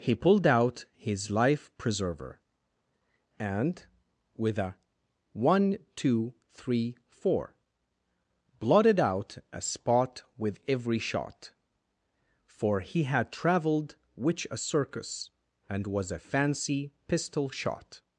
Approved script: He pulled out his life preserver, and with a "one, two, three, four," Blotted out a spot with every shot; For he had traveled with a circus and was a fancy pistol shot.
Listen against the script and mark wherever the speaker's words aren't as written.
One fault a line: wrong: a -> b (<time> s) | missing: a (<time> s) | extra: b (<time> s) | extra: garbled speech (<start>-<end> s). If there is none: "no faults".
wrong: with -> which (14.2 s)